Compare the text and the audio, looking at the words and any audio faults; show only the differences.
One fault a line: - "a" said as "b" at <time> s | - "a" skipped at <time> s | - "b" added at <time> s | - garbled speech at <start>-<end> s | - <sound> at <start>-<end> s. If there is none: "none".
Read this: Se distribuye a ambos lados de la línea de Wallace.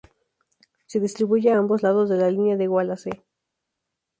none